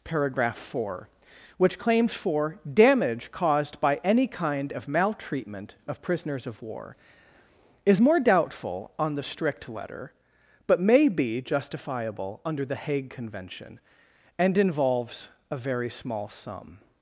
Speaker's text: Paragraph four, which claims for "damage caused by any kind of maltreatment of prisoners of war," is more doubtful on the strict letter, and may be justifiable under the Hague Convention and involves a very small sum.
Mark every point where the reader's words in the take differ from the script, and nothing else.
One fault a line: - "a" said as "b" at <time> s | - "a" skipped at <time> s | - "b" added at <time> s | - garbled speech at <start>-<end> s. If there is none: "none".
- "and" said as "but" at 10.7 s